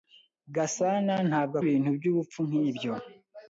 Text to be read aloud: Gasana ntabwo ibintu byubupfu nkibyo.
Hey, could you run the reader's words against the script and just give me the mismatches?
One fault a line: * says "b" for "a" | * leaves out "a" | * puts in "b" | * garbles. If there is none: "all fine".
all fine